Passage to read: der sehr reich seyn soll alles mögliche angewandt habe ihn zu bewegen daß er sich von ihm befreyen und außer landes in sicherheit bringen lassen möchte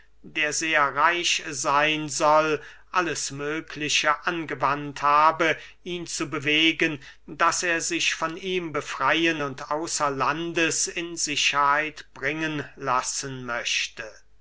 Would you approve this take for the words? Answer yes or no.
yes